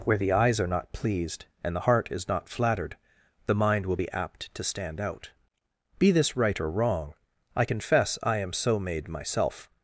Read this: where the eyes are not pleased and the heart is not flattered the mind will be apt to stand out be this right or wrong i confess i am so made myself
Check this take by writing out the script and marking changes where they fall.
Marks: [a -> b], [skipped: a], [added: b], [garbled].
where the eyes are not pleased and the heart is not flattered the mind will be apt to stand out be this right or wrong i confess i am so made myself